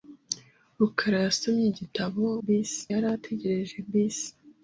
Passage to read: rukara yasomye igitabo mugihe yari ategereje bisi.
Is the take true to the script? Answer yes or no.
no